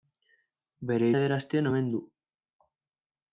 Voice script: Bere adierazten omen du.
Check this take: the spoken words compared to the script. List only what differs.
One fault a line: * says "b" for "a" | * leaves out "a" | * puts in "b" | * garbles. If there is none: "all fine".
all fine